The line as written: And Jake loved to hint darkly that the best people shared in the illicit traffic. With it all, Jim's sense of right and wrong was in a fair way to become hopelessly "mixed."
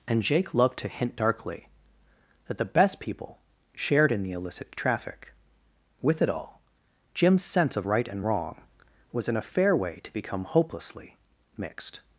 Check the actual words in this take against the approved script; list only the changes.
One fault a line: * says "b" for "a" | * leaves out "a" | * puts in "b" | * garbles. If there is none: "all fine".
all fine